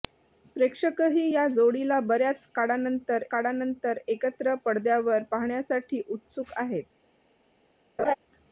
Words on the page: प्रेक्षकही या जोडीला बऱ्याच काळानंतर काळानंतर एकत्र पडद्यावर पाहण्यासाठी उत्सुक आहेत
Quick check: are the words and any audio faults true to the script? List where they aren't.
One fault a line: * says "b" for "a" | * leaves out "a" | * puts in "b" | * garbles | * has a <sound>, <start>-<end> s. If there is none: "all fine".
* has a laugh, 8.0-8.1 s